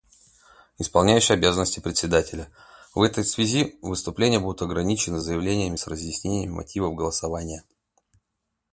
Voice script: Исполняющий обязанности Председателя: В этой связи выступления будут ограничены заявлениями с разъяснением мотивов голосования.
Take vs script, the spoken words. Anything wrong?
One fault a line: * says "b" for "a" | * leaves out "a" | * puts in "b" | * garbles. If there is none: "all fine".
all fine